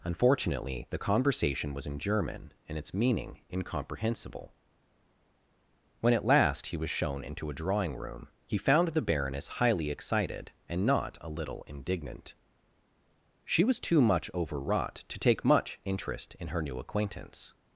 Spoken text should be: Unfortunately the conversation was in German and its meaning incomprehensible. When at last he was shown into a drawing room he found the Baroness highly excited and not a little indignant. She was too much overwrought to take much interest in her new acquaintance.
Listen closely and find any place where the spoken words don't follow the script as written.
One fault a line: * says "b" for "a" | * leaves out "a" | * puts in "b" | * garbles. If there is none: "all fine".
all fine